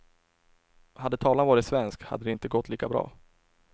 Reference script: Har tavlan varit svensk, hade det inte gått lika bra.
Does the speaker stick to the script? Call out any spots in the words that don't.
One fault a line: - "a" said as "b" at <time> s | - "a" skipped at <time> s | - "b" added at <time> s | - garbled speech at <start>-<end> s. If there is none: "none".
- "Har" said as "Hade" at 0.9 s